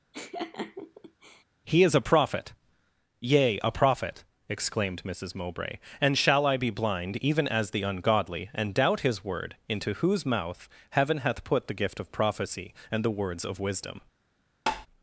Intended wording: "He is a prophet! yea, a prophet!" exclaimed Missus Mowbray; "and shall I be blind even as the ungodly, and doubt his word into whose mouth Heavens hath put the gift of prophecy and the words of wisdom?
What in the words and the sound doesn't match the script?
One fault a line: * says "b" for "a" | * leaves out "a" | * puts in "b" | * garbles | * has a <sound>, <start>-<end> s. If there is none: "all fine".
* has a laugh, 0.1-1.4 s
* says "Heaven" for "Heavens"
* has a tap, 14.7-14.9 s